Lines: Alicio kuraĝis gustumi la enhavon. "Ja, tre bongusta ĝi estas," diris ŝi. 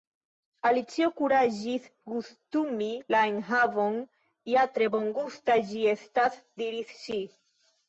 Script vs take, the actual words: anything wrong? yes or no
no